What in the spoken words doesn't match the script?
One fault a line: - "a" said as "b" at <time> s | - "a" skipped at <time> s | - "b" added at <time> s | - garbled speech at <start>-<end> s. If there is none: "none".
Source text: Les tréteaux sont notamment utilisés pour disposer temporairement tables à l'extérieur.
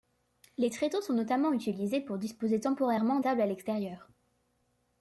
none